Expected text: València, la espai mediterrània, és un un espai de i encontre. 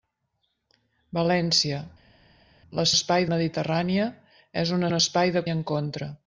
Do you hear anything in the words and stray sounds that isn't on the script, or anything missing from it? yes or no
no